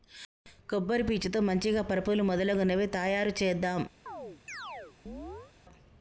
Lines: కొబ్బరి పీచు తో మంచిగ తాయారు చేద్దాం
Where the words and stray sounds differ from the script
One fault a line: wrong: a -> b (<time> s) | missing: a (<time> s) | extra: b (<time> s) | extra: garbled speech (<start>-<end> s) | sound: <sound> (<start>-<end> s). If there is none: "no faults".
extra: పరుపులు మొదలగునవి (1.8 s)
sound: chirp (4.1-5.5 s)